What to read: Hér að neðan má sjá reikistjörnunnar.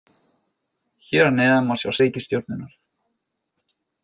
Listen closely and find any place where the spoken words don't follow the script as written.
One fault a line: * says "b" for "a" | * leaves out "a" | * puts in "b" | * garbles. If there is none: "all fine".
all fine